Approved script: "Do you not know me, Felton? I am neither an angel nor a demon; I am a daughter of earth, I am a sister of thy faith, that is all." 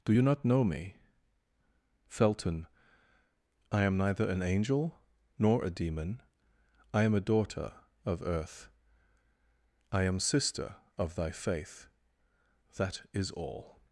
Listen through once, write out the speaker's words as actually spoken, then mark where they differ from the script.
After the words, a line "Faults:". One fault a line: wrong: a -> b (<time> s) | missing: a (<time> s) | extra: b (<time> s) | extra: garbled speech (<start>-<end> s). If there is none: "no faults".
"Do you not know me, Felton? I am neither an angel nor a demon; I am a daughter of earth, I am sister of thy faith, that is all."
Faults:
missing: a (10.2 s)